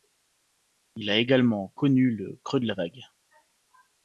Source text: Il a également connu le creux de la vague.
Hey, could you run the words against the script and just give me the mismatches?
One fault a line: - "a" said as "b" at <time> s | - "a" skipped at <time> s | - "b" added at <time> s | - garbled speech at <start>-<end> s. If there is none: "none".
none